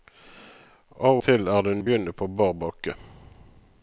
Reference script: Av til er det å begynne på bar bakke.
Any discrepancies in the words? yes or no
no